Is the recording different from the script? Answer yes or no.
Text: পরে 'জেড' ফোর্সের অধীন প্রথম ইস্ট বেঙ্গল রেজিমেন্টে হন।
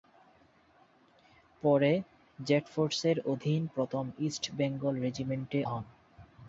no